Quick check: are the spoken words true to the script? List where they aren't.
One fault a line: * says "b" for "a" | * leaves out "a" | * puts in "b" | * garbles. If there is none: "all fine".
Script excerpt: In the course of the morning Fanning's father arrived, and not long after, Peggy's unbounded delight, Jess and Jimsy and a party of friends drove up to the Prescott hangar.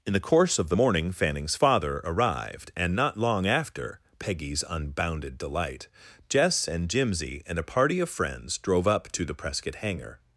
all fine